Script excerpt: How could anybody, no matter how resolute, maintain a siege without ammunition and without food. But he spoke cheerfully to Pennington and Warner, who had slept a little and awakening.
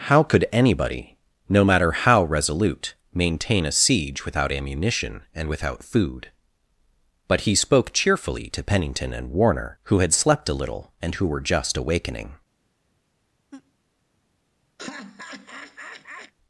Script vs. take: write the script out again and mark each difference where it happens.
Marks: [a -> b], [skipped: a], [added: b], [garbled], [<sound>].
How could anybody, no matter how resolute, maintain a siege without ammunition and without food. But he spoke cheerfully to Pennington and Warner, who had slept a little and [added: who were just] awakening. [laugh] [laugh]